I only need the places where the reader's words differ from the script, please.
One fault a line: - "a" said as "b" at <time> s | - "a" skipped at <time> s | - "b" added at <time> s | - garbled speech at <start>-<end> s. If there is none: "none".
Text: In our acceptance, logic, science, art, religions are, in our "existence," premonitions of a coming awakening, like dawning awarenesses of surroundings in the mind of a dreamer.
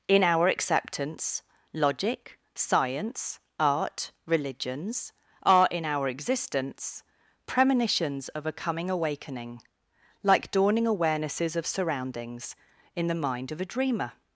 none